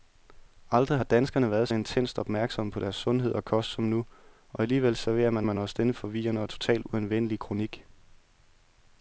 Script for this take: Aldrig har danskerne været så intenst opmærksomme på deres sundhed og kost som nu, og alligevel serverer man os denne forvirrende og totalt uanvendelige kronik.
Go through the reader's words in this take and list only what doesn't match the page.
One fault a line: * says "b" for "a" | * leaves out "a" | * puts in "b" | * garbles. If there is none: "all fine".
* leaves out "så"
* puts in "man"